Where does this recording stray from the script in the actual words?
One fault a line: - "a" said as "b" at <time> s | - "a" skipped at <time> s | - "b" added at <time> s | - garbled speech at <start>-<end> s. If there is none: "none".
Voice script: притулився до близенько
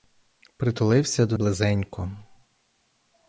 none